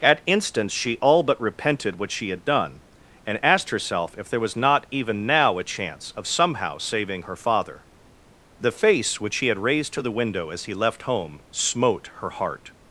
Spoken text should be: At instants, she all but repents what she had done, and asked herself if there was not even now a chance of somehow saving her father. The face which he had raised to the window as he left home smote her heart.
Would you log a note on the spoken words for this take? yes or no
yes